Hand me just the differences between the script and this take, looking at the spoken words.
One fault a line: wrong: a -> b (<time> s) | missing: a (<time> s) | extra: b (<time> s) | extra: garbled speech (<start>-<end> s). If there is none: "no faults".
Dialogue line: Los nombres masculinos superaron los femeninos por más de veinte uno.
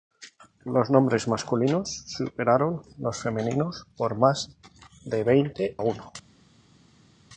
no faults